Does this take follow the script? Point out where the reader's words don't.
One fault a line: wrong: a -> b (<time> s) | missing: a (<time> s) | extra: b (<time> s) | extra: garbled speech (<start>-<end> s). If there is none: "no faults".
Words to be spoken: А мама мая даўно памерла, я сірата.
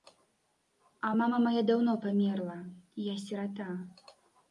no faults